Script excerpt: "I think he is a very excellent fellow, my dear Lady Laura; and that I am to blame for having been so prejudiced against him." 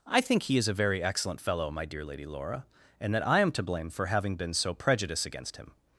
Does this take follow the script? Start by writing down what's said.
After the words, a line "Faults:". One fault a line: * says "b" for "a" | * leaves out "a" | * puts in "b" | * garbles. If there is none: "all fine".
"I think he is a very excellent fellow, my dear Lady Laura; and that I am to blame for having been so prejudiced against him."
Faults:
all fine